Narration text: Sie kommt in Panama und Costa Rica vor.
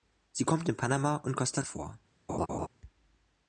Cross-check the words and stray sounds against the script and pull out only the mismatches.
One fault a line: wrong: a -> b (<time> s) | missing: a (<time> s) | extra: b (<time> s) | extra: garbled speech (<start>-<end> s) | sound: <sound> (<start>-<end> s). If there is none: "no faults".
missing: Rica (1.6 s)
sound: laugh (2.3-2.7 s)